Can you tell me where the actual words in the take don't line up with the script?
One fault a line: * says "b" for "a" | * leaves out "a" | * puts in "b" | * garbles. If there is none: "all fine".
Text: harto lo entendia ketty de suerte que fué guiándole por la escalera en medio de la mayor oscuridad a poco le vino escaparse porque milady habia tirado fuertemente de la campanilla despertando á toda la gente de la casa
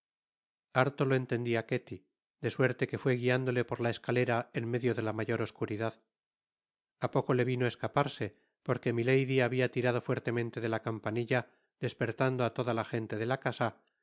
all fine